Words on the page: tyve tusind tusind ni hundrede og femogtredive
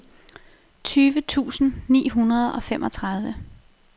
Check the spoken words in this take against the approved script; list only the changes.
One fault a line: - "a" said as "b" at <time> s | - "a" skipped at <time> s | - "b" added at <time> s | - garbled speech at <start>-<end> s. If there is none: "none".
- "tusind" skipped at 1.7 s